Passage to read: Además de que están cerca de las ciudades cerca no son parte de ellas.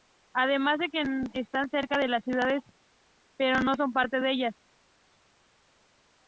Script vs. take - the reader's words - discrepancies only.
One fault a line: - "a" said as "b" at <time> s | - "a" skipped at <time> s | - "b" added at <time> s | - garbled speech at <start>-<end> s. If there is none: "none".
- "cerca" said as "pero" at 3.4 s